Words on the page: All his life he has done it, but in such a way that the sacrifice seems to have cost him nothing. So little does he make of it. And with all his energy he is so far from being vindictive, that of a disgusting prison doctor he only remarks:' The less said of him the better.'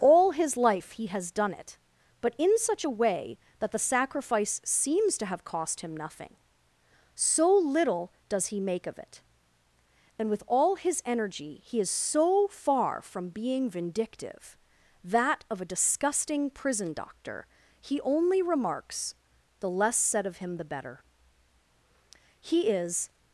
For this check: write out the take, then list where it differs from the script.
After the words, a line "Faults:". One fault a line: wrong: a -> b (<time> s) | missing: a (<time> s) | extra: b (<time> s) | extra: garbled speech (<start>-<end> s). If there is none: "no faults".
All his life he has done it, but in such a way that the sacrifice seems to have cost him nothing. So little does he make of it. And with all his energy he is so far from being vindictive, that of a disgusting prison doctor he only remarks:' The less said of him the better.' He is
Faults:
extra: He is (22.4 s)